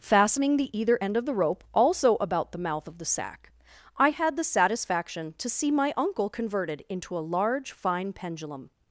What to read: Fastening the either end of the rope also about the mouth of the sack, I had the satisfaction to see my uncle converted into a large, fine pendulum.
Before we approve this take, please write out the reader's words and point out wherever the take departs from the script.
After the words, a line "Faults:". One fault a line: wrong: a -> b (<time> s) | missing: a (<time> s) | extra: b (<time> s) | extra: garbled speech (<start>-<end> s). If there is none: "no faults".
Fastening the either end of the rope also about the mouth of the sack, I had the satisfaction to see my uncle converted into a large, fine pendulum.
Faults:
no faults